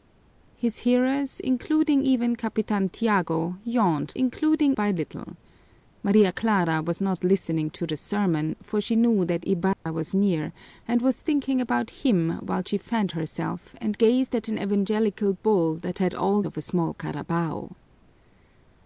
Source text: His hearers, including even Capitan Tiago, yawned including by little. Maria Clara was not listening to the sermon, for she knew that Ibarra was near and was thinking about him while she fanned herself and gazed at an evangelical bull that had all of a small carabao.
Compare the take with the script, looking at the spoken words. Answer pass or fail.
pass